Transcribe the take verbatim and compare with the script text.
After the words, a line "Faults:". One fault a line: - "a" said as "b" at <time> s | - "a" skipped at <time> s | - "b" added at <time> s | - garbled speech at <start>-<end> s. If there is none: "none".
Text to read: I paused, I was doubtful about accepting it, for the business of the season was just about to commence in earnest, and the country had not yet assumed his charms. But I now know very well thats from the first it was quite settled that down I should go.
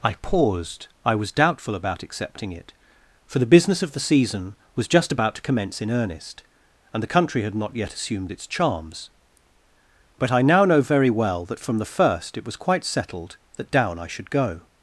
I paused, I was doubtful about accepting it, for the business of the season was just about to commence in earnest, and the country had not yet assumed its charms. But I now know very well that from the first it was quite settled that down I should go.
Faults:
- "his" said as "its" at 8.3 s
- "thats" said as "that" at 11.5 s